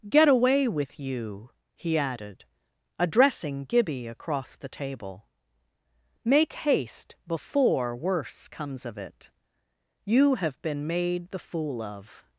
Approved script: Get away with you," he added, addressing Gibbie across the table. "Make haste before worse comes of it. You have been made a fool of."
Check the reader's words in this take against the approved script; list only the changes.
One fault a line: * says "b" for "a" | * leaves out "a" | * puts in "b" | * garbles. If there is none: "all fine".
* says "the" for "a"